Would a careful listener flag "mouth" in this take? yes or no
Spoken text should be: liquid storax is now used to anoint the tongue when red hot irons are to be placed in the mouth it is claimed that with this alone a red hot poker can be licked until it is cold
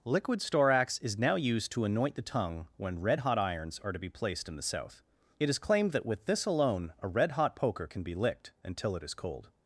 yes